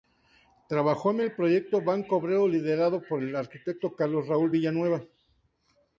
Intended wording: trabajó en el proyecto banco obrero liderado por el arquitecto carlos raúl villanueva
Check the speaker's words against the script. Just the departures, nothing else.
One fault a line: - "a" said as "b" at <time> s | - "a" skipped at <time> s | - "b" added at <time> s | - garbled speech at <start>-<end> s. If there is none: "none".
none